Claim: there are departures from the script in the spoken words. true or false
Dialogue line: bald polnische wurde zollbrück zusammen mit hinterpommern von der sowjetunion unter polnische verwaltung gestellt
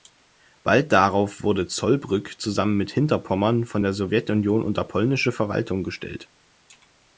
true